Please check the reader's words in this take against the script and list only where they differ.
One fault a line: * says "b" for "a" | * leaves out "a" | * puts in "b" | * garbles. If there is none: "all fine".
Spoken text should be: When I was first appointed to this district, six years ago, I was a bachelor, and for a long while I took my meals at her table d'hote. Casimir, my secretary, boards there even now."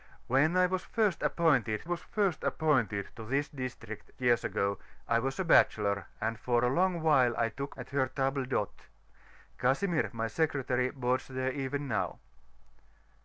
* puts in "was first appointed"
* leaves out "six"
* leaves out "my meals"